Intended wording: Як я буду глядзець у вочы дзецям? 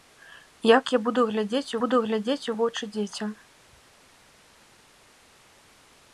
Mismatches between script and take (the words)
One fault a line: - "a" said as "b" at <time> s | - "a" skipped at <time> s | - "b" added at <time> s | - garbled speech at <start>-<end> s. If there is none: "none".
- "буду глядзець" added at 1.8 s